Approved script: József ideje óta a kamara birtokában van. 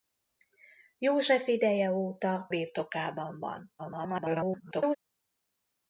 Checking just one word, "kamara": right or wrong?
wrong